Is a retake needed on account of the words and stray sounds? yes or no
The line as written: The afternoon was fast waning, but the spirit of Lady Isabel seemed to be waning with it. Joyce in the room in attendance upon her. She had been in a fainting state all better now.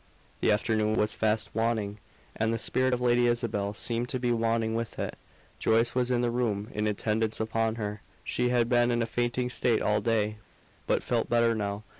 yes